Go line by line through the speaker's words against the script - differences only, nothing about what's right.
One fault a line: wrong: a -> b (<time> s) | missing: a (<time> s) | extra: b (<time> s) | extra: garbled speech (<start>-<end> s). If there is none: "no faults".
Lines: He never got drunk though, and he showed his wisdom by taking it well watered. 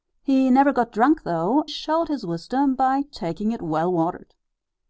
missing: and he (1.6 s)